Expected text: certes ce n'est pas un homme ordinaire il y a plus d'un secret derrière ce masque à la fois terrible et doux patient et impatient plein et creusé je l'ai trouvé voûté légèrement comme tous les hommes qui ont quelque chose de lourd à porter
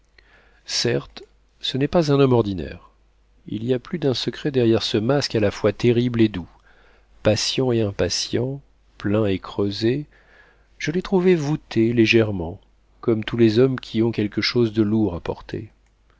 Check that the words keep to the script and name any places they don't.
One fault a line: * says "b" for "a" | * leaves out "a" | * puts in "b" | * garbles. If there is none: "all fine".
all fine